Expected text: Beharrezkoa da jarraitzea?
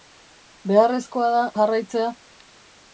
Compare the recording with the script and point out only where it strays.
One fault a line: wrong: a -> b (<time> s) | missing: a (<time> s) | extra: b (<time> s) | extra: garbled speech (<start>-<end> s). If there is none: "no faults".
no faults